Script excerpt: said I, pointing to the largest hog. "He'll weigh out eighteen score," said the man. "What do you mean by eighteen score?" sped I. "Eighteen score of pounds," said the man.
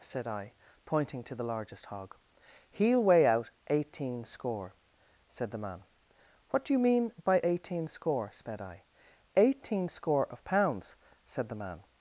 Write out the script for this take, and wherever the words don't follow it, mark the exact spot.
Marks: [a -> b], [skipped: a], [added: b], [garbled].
said I, pointing to the largest hog. "He'll weigh out eighteen score," said the man. "What do you mean by eighteen score?" sped I. "Eighteen score of pounds," said the man.